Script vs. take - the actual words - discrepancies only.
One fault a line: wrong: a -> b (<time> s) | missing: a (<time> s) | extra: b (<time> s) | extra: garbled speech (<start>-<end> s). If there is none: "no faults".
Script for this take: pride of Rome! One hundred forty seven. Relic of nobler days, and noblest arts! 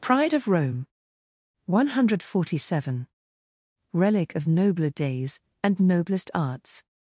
no faults